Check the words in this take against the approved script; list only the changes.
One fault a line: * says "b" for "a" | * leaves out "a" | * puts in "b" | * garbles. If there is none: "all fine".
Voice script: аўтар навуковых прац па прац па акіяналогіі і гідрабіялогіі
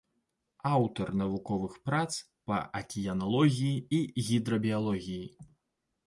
* leaves out "прац па"